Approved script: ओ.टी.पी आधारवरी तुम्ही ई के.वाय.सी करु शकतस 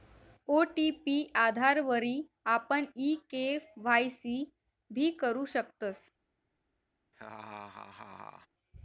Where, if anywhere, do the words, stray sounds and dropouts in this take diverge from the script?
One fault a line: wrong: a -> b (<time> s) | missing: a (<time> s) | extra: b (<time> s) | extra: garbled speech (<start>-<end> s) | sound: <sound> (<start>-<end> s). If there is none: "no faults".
wrong: तुम्ही -> आपण (2.5 s)
extra: भी (4.9 s)
sound: laugh (7.1-8.5 s)